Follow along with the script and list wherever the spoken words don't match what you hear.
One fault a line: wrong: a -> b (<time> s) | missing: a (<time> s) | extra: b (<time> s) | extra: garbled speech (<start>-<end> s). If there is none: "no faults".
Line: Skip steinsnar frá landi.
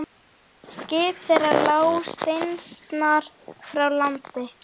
extra: þeirra lá (1.3 s)